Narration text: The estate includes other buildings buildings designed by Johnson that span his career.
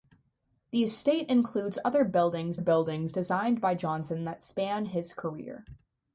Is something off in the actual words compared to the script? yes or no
no